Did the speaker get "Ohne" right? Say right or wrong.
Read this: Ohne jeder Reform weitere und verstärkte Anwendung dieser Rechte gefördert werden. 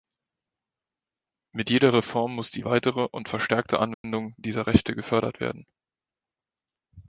wrong